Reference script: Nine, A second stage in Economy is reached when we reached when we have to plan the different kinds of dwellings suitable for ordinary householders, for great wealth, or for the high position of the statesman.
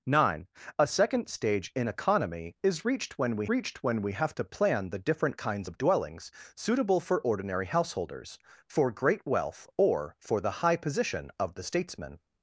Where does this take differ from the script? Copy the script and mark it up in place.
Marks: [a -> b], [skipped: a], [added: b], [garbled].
Nine, A second stage in Economy is reached when we reached when we have to plan the different kinds of dwellings suitable for ordinary householders, for great wealth, or for the high position of the statesman.